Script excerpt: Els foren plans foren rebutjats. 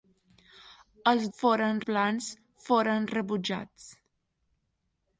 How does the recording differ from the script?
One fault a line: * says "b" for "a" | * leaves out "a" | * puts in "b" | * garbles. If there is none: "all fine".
all fine